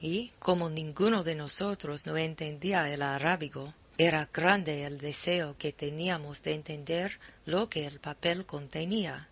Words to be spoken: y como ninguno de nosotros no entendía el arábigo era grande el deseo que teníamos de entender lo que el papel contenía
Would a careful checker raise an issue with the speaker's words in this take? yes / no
no